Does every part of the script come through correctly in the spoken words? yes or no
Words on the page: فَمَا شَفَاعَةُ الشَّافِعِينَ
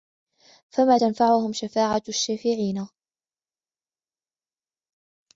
no